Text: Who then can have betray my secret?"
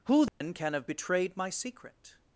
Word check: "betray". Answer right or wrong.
wrong